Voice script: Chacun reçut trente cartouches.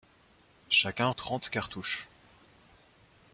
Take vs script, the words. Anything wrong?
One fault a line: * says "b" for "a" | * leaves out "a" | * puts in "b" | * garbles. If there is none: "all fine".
* leaves out "reçut"